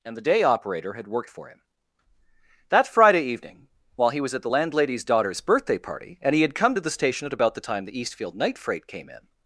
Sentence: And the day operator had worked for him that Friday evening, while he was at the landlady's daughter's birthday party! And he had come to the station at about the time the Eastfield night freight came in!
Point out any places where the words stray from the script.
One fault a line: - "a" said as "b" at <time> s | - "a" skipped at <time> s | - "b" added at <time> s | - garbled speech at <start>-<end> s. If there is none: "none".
none